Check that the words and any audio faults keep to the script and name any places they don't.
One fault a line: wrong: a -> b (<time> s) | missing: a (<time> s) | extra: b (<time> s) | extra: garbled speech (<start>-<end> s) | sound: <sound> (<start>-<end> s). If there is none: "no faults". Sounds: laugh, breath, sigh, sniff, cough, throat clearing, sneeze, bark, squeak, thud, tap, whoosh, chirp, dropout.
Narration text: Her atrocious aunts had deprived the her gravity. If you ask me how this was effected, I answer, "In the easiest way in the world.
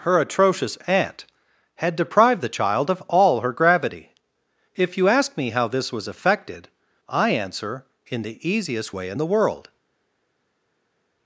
wrong: aunts -> aunt (0.9 s)
extra: child of all (2.6 s)